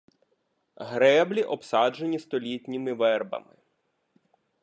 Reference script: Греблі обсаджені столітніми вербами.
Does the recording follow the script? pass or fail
pass